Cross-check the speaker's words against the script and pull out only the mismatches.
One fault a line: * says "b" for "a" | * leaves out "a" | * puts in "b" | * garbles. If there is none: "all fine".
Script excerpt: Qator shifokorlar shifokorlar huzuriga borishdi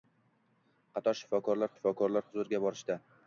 all fine